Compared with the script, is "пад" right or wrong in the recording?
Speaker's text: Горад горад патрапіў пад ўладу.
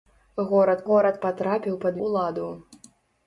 right